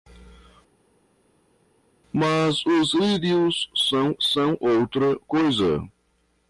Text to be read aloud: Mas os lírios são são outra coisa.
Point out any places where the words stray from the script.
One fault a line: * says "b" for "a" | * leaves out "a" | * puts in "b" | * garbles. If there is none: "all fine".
all fine